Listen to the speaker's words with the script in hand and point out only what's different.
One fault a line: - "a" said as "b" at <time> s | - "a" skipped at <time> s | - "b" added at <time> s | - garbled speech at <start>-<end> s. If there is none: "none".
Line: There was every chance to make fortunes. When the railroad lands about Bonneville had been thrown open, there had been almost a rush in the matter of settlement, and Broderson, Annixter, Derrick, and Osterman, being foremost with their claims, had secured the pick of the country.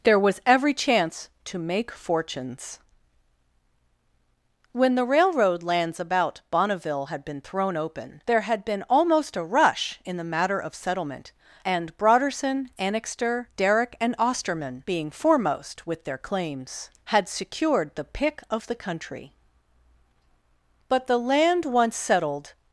- "But the land once settled" added at 20.9 s